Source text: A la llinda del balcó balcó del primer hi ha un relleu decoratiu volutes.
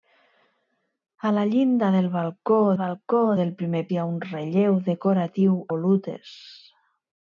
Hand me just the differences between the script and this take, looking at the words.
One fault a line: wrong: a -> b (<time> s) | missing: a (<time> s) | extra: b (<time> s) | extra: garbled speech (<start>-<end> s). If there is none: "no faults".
no faults